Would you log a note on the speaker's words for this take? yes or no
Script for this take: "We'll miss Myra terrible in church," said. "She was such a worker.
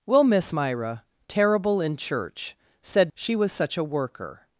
no